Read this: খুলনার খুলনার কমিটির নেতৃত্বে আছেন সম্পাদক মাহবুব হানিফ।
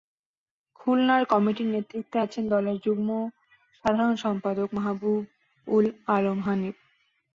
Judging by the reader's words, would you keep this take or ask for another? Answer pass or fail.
fail